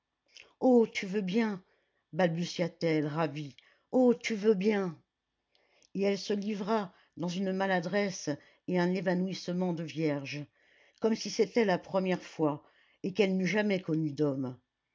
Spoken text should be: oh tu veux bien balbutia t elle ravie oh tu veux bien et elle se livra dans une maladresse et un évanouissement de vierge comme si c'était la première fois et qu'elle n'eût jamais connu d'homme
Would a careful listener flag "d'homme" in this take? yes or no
no